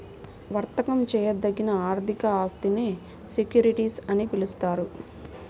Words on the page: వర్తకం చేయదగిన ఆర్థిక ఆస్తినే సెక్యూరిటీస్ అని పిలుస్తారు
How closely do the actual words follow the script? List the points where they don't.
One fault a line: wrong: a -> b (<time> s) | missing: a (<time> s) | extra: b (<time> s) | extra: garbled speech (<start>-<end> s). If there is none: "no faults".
no faults